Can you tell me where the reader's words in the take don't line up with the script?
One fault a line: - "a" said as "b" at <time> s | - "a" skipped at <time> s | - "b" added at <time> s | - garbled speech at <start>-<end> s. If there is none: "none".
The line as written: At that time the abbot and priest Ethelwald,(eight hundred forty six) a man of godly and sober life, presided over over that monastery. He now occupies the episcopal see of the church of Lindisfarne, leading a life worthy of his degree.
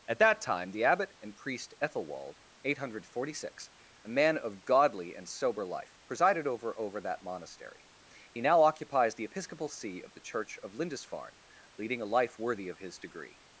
none